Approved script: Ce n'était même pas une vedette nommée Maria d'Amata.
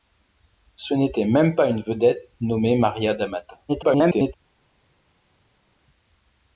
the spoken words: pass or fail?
fail